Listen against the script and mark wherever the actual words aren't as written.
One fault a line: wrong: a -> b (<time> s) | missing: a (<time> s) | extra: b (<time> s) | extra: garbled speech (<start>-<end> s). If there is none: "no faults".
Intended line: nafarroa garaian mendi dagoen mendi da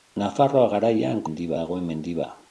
no faults